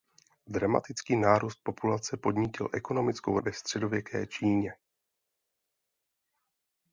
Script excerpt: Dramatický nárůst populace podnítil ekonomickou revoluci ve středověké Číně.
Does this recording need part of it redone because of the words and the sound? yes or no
yes